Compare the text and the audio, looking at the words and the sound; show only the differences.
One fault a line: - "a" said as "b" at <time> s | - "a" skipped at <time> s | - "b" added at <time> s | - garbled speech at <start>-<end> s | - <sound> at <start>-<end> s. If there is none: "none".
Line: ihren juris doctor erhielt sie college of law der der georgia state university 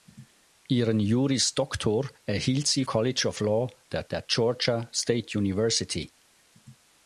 none